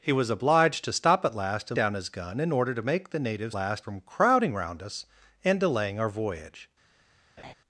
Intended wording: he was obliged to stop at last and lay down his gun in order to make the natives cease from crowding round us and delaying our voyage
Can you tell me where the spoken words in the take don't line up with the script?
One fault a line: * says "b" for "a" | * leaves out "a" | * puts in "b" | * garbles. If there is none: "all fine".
* leaves out "lay"
* says "last" for "cease"